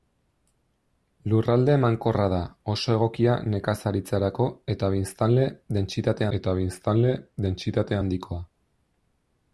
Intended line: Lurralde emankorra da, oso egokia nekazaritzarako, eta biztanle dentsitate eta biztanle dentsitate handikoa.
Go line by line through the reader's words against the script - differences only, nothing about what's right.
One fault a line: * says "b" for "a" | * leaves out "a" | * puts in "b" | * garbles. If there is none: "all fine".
all fine